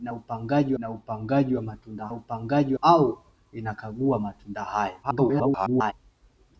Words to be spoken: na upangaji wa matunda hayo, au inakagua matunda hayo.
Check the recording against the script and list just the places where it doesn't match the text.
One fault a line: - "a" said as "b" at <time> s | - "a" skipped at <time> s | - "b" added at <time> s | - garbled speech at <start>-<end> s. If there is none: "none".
- "na upangaji" added at 0.8 s
- "hayo" said as "upangaji" at 2.1 s
- garbled speech at 5.0-5.9 s